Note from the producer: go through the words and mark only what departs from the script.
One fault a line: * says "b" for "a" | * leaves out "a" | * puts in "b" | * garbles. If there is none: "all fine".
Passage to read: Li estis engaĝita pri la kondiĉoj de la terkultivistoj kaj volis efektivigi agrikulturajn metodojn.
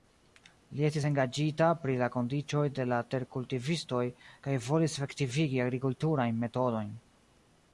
all fine